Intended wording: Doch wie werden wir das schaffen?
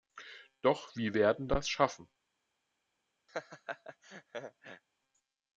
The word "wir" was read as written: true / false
false